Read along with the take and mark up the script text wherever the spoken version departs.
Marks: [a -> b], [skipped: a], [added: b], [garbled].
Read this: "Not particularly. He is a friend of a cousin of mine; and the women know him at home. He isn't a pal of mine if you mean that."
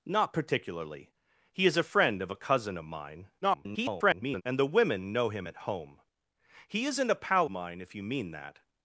"Not particularly. He is a friend of a cousin of mine; [garbled] and the women know him at home. He isn't a pal [skipped: of] mine if you mean that."